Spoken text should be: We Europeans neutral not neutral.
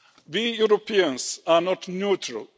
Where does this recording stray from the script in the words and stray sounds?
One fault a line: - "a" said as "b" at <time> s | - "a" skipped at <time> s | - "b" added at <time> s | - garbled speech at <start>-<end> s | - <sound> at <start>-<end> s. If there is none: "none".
- "neutral" said as "are" at 1.4 s